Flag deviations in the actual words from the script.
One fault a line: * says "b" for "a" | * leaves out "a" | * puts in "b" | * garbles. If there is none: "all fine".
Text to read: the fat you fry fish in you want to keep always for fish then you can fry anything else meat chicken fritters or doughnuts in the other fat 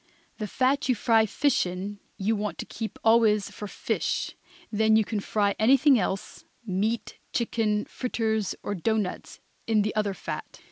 all fine